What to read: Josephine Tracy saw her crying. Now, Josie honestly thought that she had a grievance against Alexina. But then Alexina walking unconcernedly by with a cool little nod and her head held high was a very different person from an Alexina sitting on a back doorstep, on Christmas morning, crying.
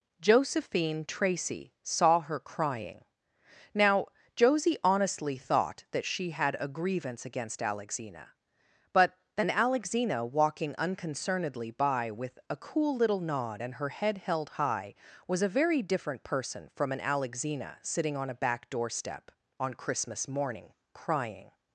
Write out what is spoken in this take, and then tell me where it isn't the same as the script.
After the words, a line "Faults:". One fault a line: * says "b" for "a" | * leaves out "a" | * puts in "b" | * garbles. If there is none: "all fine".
Josephine Tracy saw her crying. Now, Josie honestly thought that she had a grievance against Alexina. But then Alexina walking unconcernedly by with a cool little nod and her head held high was a very different person from an Alexina sitting on a back doorstep, on Christmas morning, crying.
Faults:
all fine